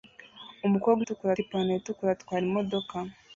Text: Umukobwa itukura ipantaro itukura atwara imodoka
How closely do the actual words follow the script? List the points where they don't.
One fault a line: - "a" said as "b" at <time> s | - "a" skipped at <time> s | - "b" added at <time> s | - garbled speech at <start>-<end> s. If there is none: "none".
none